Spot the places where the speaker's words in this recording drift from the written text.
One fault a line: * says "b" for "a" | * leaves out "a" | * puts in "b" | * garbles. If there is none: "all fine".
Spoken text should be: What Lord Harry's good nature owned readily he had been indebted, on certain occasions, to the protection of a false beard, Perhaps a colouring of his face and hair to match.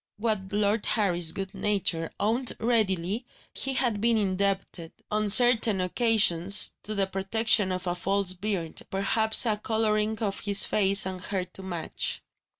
all fine